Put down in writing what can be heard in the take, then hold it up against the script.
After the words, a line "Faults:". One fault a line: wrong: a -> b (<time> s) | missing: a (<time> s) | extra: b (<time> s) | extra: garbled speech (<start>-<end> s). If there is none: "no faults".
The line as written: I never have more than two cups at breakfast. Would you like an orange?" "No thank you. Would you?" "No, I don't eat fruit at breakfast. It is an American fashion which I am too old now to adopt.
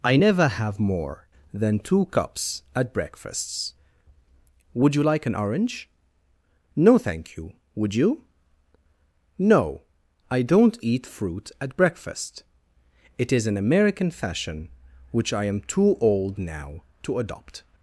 I never have more than two cups at breakfasts. Would you like an orange?" "No thank you. Would you?" "No, I don't eat fruit at breakfast. It is an American fashion which I am too old now to adopt.
Faults:
wrong: breakfast -> breakfasts (2.9 s)